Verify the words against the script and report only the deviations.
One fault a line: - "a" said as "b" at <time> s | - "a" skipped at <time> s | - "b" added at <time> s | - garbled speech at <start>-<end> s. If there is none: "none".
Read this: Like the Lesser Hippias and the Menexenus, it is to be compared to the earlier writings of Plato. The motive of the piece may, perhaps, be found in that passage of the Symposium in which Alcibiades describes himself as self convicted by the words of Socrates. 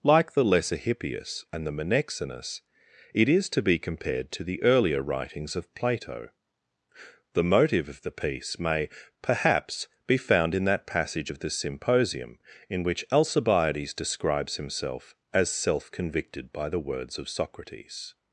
none